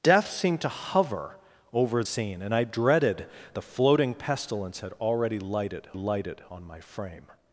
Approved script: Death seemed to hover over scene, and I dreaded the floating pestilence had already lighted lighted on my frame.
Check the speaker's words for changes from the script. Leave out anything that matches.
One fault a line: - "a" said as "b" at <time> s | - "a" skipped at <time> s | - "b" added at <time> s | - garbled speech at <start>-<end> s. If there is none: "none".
none